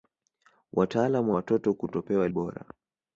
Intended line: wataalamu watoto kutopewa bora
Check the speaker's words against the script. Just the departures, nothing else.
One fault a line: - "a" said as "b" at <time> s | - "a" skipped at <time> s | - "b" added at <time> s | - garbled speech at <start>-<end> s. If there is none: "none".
none